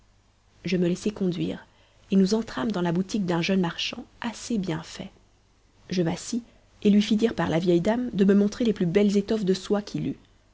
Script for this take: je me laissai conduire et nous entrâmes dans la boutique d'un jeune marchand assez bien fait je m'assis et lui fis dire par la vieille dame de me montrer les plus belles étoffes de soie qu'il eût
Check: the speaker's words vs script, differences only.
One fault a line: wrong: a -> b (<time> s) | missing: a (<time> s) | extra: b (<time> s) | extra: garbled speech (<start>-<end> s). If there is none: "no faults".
no faults